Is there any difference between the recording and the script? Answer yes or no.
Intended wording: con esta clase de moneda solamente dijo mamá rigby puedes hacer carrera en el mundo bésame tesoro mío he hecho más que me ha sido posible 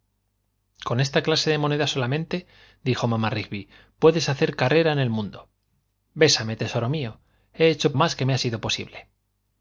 no